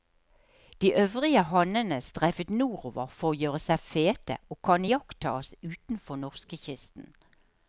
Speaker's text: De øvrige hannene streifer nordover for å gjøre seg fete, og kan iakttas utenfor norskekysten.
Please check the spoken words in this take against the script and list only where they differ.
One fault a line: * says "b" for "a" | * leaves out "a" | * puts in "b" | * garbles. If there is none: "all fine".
all fine